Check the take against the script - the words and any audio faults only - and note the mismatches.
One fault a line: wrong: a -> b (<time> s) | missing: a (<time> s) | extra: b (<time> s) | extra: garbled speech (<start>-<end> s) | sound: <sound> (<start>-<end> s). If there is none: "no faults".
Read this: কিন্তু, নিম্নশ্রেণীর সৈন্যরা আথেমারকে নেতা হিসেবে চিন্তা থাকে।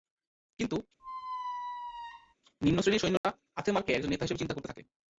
sound: squeak (1.0-2.3 s)
sound: dropout (3.2-3.2 s)
extra: একজন (3.9 s)
extra: করতে (4.5 s)